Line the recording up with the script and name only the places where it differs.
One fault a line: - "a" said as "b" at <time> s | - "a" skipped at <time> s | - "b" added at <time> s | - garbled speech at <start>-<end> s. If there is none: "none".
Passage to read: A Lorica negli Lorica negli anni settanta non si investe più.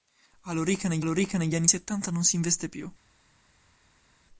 none